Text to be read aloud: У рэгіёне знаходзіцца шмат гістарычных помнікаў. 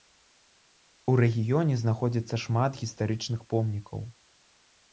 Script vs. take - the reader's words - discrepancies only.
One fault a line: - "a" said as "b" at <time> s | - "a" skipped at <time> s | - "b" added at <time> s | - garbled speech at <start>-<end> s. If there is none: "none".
none